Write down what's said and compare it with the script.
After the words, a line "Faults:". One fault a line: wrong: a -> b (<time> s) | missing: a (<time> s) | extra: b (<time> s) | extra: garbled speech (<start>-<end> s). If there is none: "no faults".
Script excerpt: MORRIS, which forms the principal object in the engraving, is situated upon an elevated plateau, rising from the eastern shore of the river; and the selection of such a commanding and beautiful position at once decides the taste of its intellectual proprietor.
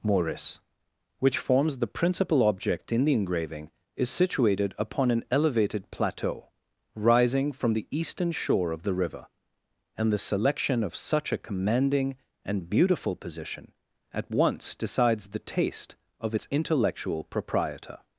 MORRIS, which forms the principal object in the engraving, is situated upon an elevated plateau, rising from the eastern shore of the river; and the selection of such a commanding and beautiful position at once decides the taste of its intellectual proprietor.
Faults:
no faults